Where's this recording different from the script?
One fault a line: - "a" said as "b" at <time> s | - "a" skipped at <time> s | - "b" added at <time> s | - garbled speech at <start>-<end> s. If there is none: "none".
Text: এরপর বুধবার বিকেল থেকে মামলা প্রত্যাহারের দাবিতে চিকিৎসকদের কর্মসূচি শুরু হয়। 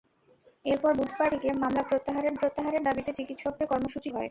- "বিকেল" skipped at 1.3 s
- "প্রত্যাহারের" added at 2.4 s
- "শুরু" skipped at 4.1 s